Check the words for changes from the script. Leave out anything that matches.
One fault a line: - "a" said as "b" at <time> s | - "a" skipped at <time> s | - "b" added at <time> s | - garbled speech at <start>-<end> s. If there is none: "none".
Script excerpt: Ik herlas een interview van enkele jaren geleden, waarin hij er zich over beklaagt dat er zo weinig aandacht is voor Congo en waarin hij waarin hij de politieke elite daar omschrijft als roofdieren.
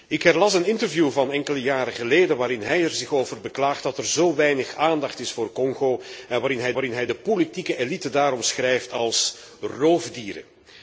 none